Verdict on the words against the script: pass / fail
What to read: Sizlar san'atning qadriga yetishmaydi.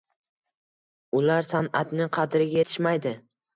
fail